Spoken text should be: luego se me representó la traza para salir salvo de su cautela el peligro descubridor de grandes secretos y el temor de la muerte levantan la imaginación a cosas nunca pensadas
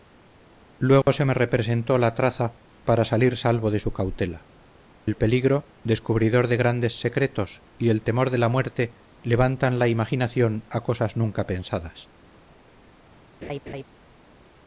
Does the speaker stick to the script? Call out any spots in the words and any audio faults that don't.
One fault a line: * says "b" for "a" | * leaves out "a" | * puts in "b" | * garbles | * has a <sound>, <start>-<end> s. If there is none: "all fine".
* has a dropout, 1.0-1.1 s
* has a laugh, 13.4-13.8 s